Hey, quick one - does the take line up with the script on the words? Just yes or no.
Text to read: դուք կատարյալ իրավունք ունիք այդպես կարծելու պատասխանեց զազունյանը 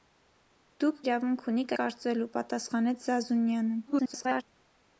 no